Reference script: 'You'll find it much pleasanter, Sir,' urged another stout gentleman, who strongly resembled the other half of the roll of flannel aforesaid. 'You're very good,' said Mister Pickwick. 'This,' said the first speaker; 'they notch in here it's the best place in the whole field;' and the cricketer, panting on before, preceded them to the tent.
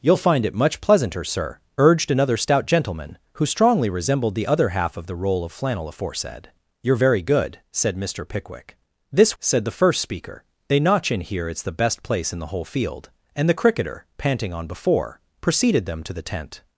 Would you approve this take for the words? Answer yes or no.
yes